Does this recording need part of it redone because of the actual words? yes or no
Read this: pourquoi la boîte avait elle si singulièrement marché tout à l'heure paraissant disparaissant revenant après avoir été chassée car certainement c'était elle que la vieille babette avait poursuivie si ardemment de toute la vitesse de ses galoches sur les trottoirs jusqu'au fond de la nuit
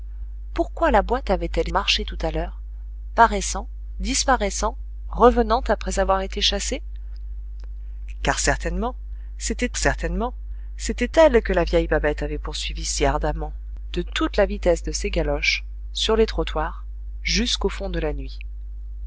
yes